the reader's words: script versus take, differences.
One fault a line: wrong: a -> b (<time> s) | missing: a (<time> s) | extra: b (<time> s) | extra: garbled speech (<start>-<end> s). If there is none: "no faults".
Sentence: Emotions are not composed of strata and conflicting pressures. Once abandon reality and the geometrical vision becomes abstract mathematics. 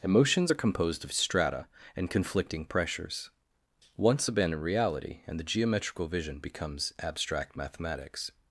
missing: not (0.5 s)